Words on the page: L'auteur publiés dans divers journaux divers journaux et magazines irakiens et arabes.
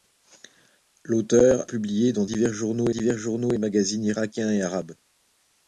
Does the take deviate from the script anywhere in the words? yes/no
no